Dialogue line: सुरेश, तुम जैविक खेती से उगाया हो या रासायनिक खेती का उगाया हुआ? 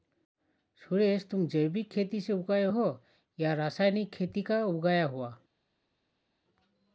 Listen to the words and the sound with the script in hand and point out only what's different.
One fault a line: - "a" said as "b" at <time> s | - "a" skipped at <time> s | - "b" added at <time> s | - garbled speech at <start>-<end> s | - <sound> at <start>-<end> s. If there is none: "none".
none